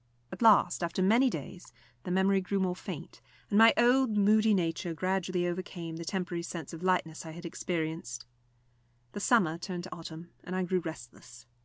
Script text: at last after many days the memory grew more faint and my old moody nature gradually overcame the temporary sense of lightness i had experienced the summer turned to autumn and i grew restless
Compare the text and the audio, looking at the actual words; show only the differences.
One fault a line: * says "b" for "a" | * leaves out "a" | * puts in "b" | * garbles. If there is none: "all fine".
all fine